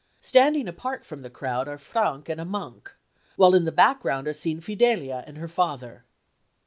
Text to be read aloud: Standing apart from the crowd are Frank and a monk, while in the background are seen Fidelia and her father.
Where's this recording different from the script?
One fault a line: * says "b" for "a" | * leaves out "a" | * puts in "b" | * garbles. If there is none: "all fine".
all fine